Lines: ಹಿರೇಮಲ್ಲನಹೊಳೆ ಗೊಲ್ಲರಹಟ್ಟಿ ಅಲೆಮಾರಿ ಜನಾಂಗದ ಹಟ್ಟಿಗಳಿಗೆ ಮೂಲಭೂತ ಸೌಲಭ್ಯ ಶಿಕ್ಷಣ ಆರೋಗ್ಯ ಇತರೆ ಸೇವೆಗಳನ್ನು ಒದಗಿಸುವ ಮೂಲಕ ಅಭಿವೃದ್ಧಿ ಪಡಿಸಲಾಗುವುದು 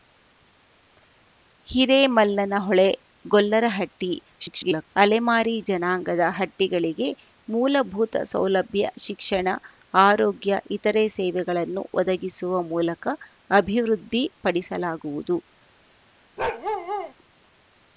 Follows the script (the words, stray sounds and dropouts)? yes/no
no